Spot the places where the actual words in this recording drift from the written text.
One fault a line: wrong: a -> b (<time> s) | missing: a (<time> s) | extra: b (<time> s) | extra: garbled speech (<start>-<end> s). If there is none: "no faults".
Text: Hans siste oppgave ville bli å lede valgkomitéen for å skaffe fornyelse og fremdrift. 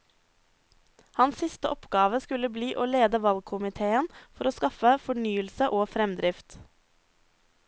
wrong: ville -> skulle (2.2 s)